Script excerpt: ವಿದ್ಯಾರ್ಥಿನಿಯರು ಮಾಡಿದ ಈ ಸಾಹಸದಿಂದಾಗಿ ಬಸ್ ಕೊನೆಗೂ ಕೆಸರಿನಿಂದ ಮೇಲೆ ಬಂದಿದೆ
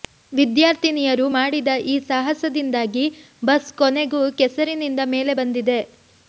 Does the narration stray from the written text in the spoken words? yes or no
no